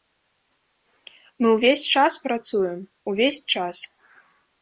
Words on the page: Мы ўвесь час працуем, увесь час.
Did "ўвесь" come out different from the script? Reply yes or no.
no